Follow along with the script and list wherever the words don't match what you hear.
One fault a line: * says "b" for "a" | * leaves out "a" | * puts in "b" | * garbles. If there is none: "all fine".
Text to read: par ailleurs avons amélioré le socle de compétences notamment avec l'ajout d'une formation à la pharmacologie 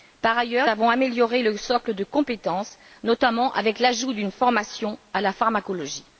all fine